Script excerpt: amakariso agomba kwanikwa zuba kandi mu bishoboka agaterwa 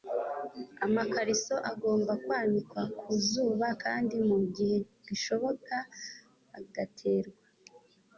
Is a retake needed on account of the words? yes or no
yes